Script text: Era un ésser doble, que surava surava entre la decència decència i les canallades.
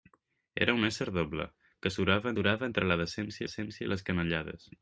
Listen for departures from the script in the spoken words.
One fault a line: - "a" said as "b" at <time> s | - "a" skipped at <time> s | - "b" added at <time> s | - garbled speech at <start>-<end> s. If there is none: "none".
none